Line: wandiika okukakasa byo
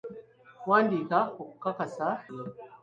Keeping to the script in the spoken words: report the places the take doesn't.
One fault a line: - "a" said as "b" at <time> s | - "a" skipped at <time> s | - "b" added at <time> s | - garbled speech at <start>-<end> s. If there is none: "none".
none